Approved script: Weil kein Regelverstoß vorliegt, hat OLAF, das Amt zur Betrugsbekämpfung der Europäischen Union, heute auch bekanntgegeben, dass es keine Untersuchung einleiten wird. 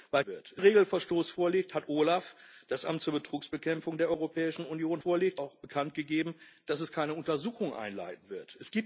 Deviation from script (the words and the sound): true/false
true